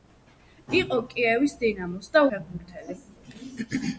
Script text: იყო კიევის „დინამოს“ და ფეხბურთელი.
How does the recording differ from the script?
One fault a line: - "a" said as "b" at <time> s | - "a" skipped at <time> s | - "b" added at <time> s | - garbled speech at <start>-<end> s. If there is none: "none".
none